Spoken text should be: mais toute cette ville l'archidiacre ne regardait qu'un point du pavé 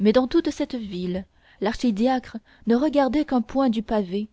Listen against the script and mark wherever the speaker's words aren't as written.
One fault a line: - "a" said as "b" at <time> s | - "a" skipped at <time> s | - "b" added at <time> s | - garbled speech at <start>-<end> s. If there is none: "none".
- "dans" added at 0.1 s